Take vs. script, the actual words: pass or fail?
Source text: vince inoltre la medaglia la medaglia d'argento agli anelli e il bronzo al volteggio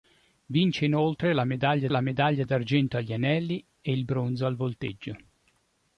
pass